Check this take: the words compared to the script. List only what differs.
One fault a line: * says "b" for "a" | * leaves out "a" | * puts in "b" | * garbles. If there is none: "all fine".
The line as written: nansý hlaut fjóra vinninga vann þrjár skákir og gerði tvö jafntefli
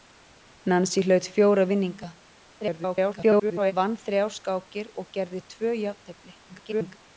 * garbles
* garbles